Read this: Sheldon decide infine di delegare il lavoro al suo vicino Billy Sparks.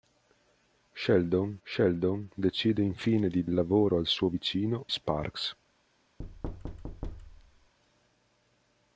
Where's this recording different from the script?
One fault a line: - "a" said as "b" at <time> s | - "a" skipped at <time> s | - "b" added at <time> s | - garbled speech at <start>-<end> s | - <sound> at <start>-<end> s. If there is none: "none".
- "sheldon" added at 1.6 s
- "delegare" skipped at 3.4 s
- "Billy" skipped at 4.9 s
- thud at 6.2-7.7 s